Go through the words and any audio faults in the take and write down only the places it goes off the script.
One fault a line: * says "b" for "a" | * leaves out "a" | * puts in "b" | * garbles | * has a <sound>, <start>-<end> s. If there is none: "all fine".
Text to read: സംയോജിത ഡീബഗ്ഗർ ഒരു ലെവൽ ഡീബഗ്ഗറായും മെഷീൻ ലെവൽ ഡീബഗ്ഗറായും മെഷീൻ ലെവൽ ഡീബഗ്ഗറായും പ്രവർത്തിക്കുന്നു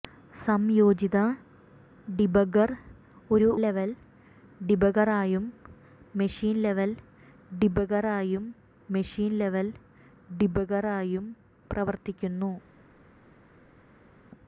all fine